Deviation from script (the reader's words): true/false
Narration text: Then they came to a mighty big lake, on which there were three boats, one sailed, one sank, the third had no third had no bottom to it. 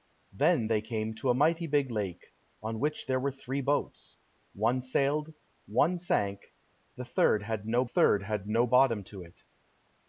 false